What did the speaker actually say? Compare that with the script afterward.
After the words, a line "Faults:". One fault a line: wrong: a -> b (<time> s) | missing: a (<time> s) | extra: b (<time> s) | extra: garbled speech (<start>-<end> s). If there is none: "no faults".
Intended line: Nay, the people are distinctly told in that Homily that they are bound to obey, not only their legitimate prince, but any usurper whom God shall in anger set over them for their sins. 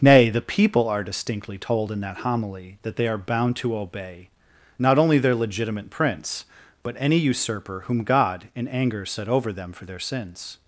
Nay, the people are distinctly told in that Homily that they are bound to obey, not only their legitimate prince, but any usurper whom God in anger set over them for their sins.
Faults:
missing: shall (8.4 s)